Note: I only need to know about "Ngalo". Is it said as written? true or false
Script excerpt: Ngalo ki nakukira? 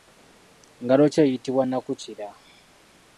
true